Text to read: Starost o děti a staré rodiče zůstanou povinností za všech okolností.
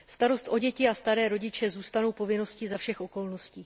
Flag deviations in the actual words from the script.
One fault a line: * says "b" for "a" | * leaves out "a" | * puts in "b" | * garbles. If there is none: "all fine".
all fine